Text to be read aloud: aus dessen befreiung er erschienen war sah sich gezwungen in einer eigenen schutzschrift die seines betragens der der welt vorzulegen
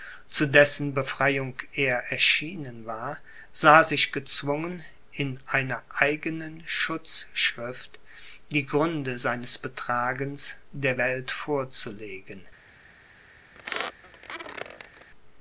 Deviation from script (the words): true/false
true